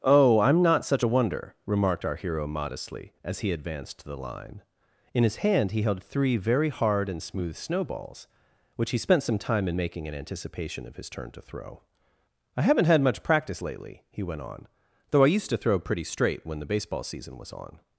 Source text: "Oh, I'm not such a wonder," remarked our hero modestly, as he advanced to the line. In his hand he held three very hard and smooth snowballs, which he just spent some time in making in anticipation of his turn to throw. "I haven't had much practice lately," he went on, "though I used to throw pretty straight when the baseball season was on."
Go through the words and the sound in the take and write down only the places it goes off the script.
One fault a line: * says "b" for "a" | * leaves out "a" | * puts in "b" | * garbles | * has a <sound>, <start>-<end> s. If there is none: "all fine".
* leaves out "just"